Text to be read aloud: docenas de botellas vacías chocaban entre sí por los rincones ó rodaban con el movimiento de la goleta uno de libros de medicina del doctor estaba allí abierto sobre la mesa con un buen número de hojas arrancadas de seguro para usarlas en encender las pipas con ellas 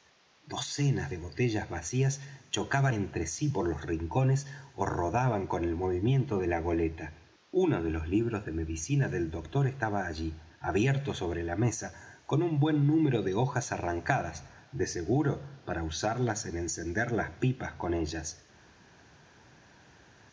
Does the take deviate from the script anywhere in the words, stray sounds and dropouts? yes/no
yes